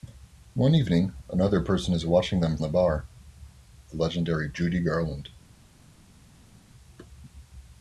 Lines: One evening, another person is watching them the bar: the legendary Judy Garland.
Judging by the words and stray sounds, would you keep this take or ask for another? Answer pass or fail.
pass